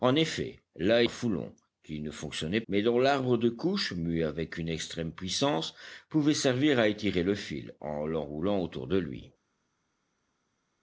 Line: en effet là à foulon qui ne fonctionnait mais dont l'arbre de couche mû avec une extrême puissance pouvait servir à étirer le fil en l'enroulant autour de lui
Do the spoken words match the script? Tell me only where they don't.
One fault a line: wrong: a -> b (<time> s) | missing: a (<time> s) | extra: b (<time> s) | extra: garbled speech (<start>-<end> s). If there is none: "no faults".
no faults